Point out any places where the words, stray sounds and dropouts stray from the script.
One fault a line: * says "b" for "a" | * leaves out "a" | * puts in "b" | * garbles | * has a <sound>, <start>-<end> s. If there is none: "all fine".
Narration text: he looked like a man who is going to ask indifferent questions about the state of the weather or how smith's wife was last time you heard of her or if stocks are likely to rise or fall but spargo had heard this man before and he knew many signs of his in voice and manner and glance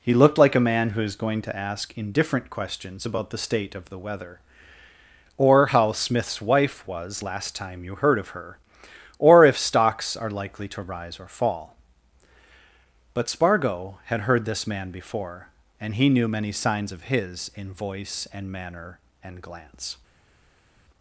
all fine